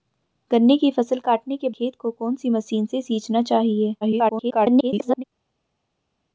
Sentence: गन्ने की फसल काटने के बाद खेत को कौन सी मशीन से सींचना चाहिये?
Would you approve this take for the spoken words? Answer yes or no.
no